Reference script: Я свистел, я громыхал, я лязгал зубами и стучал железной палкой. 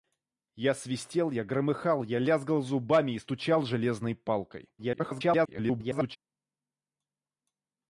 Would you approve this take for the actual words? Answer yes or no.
no